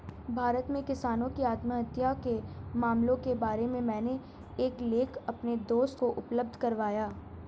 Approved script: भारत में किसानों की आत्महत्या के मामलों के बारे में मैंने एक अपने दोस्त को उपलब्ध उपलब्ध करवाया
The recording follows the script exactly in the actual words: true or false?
false